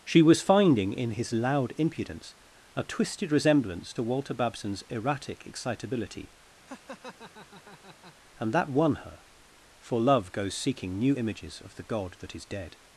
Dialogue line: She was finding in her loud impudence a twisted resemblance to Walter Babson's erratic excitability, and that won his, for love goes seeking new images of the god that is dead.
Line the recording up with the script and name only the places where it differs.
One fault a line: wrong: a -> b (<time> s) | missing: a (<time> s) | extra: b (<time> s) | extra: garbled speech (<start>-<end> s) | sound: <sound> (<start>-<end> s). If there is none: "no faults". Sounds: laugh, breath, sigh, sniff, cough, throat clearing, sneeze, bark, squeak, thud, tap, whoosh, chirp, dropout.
wrong: her -> his (1.1 s)
sound: laugh (6.7-8.1 s)
wrong: his -> her (9.0 s)